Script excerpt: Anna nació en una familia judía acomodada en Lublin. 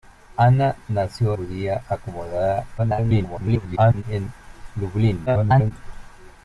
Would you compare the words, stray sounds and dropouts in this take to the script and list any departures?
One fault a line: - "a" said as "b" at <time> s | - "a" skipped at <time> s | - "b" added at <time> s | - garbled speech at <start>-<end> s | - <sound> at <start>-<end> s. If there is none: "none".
- "en una familia" skipped at 1.4 s
- garbled speech at 2.8-4.0 s
- garbled speech at 5.3-5.7 s